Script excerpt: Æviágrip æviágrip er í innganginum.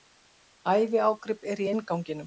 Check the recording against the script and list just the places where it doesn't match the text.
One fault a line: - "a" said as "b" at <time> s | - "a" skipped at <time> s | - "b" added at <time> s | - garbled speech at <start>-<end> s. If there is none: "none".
- "æviágrip" skipped at 1.5 s